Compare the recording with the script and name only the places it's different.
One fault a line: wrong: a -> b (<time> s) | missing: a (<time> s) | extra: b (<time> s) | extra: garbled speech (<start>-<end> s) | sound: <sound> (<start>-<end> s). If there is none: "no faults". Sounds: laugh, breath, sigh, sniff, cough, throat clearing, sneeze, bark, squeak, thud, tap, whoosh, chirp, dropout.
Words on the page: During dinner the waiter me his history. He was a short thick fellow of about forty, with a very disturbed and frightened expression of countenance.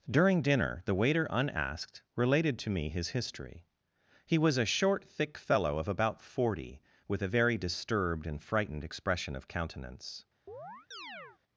extra: unasked related to (1.3 s)
sound: chirp (10.5-11.4 s)